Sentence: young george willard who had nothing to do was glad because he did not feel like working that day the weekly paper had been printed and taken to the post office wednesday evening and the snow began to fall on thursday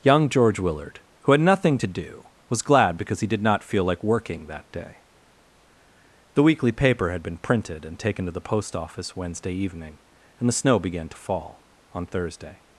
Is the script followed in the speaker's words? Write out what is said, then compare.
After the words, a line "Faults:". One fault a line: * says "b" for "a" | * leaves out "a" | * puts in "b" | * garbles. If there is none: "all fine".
young george willard who had nothing to do was glad because he did not feel like working that day the weekly paper had been printed and taken to the post office wednesday evening and the snow began to fall on thursday
Faults:
all fine